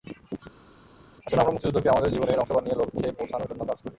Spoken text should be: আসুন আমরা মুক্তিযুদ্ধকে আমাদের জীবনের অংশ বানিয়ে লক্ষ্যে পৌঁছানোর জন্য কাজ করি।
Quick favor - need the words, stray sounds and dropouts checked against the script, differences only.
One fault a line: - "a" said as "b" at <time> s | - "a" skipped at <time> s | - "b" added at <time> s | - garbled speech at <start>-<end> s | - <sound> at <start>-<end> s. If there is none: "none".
none